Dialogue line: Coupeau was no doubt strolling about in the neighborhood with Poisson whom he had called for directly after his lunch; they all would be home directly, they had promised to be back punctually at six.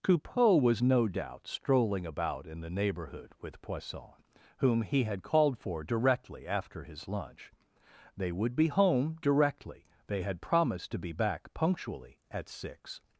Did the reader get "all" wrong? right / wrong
wrong